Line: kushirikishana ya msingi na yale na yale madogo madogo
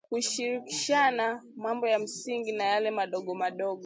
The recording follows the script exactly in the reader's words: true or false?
false